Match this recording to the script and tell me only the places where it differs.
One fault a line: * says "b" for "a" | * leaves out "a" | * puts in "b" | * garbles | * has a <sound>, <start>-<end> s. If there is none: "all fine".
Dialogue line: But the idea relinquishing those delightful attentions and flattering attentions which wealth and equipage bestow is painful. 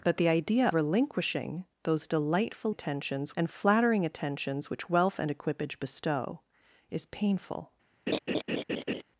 * has a laugh, 8.1-9.0 s